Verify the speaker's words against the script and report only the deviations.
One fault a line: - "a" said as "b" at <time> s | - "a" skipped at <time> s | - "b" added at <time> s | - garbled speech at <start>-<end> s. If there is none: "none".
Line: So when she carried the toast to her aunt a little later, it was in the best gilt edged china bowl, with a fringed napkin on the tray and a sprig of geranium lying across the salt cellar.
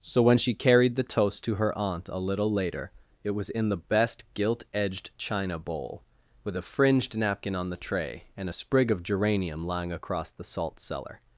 none